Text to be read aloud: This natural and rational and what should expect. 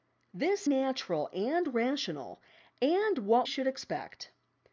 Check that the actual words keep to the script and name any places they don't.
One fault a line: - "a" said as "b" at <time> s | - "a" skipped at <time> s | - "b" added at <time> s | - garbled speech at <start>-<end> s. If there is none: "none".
none